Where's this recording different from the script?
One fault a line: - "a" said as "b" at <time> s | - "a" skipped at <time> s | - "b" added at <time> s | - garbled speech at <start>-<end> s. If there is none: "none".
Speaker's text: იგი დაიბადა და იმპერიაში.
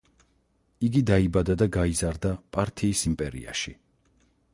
- "გაიზარდა პართიის" added at 1.8 s